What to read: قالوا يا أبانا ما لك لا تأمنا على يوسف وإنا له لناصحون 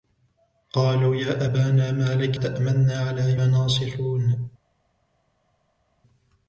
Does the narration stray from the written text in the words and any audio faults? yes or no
yes